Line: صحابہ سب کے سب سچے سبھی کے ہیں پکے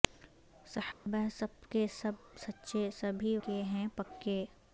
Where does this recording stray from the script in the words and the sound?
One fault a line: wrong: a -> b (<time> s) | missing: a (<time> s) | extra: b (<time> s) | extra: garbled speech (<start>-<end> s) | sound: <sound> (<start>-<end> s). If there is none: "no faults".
sound: dropout (0.9-1.1 s)